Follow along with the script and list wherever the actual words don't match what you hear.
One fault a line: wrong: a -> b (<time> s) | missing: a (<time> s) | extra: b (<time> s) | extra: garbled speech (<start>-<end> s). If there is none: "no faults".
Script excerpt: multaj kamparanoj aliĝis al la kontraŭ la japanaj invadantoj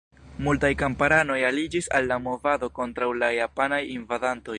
extra: movado (2.3 s)